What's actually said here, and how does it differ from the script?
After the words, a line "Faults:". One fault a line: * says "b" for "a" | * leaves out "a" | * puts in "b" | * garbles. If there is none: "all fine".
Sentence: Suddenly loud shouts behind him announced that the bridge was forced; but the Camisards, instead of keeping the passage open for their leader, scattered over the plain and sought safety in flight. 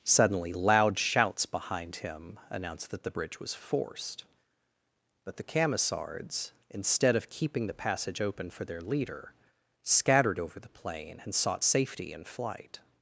Suddenly loud shouts behind him announced that the bridge was forced; but the Camisards, instead of keeping the passage open for their leader, scattered over the plain and sought safety in flight.
Faults:
all fine